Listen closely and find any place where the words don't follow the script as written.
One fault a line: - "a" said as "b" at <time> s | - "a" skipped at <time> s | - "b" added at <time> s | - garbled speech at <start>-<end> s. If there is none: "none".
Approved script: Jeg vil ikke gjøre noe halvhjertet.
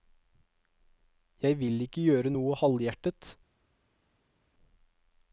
none